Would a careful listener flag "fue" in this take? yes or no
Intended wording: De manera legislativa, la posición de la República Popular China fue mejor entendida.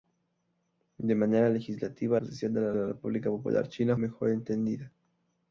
yes